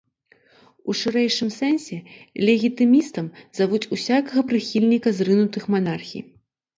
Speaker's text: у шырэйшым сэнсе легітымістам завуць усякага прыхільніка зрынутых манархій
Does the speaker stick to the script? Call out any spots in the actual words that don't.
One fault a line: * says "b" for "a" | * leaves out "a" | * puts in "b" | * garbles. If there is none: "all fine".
all fine